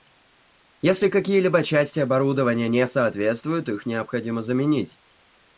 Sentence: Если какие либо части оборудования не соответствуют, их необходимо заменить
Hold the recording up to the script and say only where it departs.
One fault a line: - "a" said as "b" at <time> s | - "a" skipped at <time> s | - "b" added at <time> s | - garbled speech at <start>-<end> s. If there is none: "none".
none